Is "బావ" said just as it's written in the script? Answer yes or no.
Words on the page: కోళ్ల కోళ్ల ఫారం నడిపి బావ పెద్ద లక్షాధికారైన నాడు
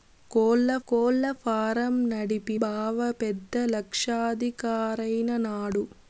yes